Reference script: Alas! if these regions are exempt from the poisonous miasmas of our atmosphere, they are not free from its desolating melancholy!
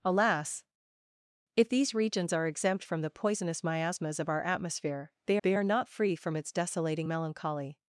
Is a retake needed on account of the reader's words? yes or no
yes